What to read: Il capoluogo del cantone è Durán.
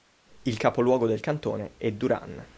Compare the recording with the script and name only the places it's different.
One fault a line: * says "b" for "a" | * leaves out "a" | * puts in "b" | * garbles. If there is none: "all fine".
all fine